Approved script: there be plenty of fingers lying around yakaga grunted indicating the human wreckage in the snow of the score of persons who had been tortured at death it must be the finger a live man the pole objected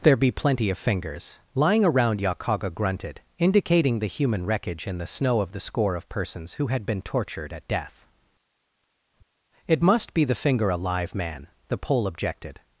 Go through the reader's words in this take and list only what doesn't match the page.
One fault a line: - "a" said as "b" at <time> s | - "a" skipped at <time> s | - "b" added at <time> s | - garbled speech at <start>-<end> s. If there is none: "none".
none